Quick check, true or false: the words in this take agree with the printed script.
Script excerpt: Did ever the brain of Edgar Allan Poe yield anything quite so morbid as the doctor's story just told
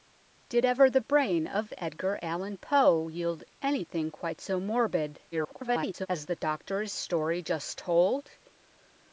false